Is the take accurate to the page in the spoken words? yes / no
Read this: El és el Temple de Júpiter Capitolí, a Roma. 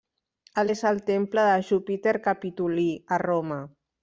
yes